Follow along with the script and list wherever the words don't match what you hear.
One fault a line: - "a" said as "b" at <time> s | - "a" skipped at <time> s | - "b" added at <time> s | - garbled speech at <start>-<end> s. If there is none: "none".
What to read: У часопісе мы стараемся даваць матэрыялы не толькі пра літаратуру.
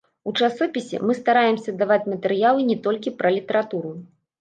none